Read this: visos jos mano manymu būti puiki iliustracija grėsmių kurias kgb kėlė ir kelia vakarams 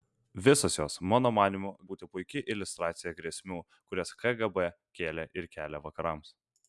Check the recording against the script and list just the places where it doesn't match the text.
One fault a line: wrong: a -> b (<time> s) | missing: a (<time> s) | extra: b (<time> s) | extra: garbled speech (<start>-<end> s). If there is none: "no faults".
no faults